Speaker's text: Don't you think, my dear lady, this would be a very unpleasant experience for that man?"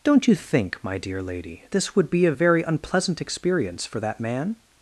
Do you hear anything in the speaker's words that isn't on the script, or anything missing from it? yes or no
no